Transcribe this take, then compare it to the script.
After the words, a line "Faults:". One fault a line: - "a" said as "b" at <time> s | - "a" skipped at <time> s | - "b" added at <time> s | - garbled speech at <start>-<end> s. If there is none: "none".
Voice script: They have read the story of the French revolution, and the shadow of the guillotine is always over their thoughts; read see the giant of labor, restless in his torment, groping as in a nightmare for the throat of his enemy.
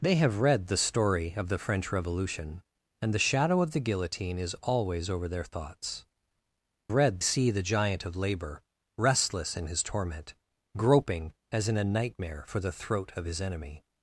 They have read the story of the French revolution, and the shadow of the guillotine is always over their thoughts; read see the giant of labor, restless in his torment, groping as in a nightmare for the throat of his enemy.
Faults:
none